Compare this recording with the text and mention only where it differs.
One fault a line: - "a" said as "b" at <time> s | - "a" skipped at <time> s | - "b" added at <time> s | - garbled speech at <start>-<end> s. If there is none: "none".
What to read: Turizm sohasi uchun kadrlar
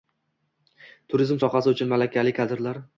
- "malakali" added at 1.9 s